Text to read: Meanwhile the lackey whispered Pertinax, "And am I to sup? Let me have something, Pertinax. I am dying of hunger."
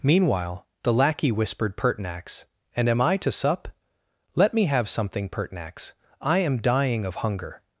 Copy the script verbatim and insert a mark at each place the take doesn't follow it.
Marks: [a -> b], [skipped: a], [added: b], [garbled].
Meanwhile the lackey whispered Pertinax, "And am I to sup? Let me have something, Pertinax. I am dying of hunger."